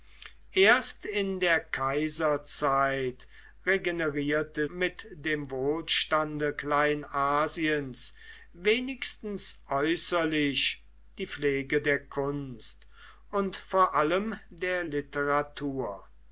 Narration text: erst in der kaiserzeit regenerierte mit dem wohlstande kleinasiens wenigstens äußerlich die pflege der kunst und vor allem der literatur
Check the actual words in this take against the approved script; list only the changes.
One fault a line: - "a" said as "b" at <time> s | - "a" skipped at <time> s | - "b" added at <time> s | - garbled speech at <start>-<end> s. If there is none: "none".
none